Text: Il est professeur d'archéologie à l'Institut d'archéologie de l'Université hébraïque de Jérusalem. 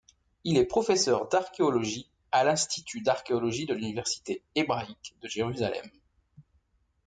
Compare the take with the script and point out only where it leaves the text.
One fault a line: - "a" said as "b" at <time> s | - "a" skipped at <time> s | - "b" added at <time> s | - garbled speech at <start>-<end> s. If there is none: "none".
none